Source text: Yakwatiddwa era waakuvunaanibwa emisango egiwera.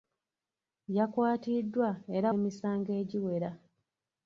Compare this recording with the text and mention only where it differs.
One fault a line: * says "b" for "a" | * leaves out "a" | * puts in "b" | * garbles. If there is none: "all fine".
* leaves out "waakuvunaanibwa"